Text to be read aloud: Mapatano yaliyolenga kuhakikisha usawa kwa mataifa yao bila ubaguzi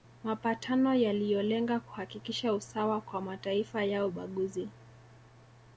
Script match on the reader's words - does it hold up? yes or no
no